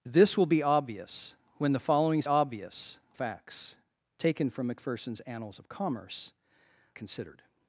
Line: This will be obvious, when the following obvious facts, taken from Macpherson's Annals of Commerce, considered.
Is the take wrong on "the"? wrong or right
right